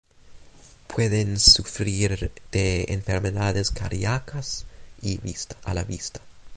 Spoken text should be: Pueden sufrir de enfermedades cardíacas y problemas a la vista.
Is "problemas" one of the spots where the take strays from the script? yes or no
yes